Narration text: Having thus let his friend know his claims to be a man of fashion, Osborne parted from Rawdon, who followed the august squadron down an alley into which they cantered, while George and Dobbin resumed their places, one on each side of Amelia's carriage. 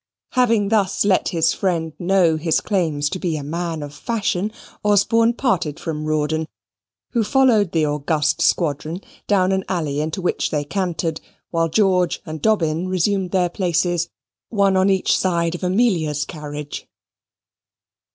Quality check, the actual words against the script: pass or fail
pass